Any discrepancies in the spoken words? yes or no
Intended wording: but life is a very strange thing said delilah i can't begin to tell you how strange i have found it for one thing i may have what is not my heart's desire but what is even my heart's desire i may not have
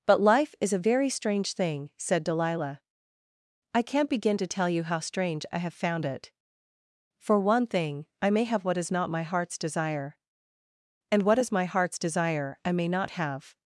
yes